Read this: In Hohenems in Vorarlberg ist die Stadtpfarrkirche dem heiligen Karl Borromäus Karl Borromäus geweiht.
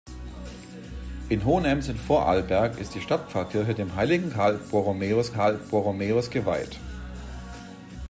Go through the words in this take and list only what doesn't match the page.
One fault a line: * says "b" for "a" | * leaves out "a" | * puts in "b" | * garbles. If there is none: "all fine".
all fine